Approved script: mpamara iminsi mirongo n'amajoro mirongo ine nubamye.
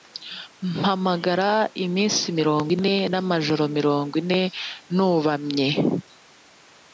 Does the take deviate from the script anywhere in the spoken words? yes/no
yes